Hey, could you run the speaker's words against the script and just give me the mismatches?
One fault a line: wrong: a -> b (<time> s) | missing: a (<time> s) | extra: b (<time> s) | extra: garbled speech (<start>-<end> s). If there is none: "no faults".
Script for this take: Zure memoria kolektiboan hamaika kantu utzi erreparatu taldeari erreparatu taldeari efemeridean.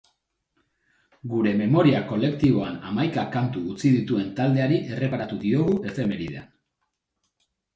wrong: Zure -> Gure (1.3 s)
wrong: erreparatu -> dituen (4.0 s)
wrong: taldeari -> diogu (5.4 s)